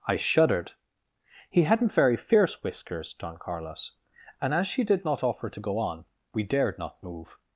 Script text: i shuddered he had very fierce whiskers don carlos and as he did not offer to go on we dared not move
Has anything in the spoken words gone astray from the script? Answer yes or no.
yes